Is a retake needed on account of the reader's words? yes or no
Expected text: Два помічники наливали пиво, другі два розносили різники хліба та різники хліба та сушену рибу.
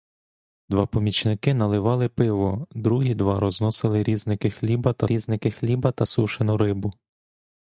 no